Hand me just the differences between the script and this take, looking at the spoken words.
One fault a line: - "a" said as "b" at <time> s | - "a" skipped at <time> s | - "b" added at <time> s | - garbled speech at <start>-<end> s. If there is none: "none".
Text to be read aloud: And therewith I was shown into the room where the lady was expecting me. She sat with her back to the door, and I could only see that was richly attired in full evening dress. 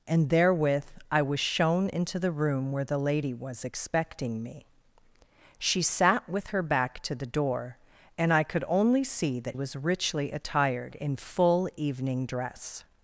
none